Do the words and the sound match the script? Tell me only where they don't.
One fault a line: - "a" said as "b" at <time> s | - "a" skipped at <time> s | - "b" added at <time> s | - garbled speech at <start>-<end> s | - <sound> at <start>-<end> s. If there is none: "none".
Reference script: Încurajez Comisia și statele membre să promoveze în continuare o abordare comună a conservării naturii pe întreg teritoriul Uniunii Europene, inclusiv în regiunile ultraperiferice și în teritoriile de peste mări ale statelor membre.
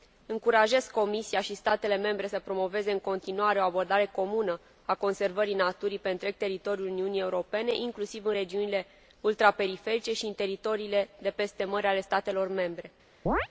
- chirp at 13.3-13.5 s